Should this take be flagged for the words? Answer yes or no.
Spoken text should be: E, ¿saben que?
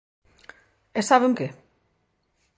no